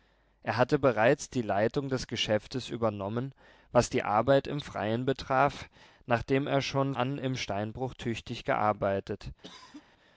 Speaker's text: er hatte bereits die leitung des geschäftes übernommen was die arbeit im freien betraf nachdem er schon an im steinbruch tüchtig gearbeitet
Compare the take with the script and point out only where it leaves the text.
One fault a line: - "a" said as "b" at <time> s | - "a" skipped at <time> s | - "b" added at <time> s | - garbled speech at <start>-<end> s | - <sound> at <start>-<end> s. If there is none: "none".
- cough at 9.4-9.8 s